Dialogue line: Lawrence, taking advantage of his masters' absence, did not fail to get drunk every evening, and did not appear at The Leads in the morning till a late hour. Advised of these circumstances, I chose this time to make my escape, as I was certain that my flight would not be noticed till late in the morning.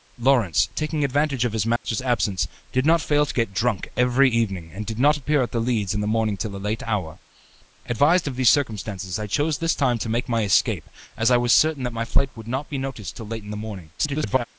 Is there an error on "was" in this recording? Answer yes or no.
no